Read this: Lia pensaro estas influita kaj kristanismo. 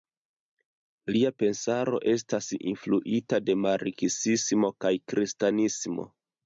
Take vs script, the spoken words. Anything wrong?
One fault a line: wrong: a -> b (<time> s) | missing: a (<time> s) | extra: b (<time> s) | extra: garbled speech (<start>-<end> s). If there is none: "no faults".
extra: de marksismo (3.5 s)